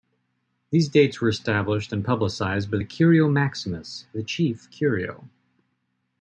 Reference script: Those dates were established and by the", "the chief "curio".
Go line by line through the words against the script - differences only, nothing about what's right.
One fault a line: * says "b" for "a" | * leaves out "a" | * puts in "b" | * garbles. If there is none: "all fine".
* says "These" for "Those"
* puts in "publicized"
* puts in "curio maximus"